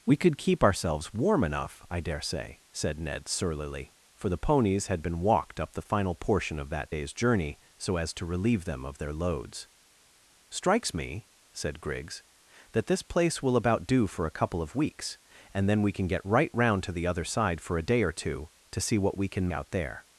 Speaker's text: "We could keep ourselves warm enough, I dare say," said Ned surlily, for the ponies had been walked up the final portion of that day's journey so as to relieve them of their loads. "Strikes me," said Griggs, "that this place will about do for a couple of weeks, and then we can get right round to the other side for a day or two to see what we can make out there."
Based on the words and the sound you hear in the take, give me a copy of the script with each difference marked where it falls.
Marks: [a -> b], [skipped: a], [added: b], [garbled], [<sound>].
"We could keep ourselves warm enough, I dare say," said Ned surlily, for the ponies had been walked up the final portion of that day's journey so as to relieve them of their loads. "Strikes me," said Griggs, "that this place will about do for a couple of weeks, and then we can get right round to the other side for a day or two to see what we can [skipped: make] out there."